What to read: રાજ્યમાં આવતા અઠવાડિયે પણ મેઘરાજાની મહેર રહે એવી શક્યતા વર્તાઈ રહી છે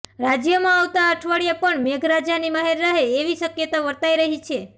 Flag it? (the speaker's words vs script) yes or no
no